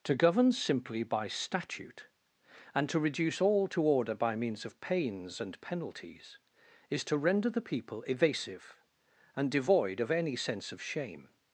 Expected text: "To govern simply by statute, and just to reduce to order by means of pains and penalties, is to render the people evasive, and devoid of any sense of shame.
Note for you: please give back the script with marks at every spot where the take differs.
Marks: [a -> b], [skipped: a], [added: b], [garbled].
"To govern simply by statute, and [skipped: just] to reduce [added: all] to order by means of pains and penalties, is to render the people evasive, and devoid of any sense of shame.